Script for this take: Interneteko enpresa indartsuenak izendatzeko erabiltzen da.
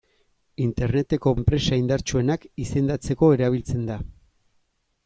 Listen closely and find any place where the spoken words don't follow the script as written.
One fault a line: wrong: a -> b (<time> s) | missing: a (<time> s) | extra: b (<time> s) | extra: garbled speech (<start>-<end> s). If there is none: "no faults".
no faults